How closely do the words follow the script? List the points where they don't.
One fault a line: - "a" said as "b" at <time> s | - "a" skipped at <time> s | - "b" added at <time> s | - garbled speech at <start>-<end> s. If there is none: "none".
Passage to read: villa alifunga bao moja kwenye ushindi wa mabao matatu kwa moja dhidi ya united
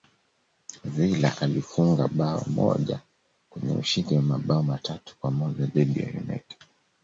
none